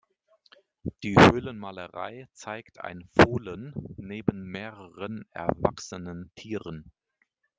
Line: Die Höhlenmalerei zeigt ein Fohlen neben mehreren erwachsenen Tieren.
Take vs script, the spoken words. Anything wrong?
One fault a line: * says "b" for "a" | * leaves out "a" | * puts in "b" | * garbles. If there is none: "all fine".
all fine